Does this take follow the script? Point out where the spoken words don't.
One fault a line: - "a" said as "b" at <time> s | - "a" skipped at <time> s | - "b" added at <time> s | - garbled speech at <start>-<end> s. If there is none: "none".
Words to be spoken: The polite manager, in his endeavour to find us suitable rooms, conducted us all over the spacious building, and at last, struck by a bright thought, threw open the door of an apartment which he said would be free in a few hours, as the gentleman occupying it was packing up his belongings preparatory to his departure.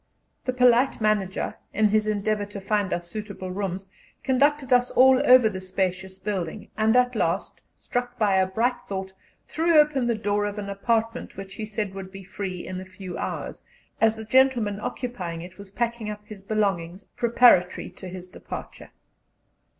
none